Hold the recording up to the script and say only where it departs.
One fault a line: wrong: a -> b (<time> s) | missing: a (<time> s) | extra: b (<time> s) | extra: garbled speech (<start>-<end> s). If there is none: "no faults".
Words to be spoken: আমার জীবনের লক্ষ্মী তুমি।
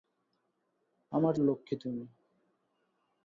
missing: জীবনের (1.3 s)